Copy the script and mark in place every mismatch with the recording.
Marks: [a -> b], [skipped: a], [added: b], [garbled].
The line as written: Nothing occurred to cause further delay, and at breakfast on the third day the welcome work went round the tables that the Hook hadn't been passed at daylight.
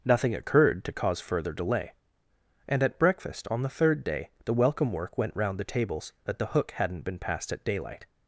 Nothing occurred to cause further delay, and at breakfast on the third day the welcome work went round the tables that the Hook hadn't been passed at daylight.